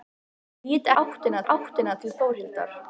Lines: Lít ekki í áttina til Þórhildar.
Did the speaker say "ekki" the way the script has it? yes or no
no